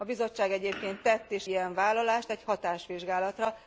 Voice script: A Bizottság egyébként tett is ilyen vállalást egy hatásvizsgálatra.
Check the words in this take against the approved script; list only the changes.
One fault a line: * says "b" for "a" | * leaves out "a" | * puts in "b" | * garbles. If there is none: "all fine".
all fine